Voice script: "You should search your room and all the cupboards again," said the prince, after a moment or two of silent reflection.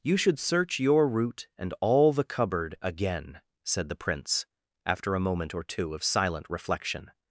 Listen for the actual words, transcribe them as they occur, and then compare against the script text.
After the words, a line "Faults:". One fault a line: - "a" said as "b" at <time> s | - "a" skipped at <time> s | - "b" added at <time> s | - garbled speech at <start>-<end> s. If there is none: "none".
"You should search your root and all the cupboard again," said the prince, after a moment or two of silent reflection.
Faults:
- "room" said as "root" at 1.1 s
- "cupboards" said as "cupboard" at 2.2 s